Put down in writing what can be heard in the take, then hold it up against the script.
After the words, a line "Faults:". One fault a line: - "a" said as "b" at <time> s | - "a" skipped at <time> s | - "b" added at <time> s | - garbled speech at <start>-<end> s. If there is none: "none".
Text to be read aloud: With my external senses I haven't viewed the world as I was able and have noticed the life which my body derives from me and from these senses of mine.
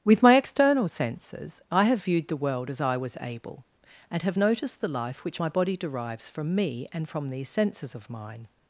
With my external senses I have viewed the world as I was able and have noticed the life which my body derives from me and from these senses of mine.
Faults:
- "haven't" said as "have" at 1.8 s